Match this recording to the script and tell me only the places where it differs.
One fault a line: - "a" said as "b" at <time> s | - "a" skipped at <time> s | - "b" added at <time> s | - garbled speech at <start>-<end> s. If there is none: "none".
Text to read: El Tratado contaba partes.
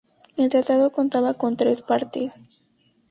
- "con tres" added at 1.3 s